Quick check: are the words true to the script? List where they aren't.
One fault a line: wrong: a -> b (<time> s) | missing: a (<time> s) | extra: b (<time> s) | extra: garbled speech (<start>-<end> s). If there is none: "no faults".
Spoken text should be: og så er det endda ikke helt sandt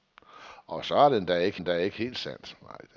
extra: endda ikke (1.6 s)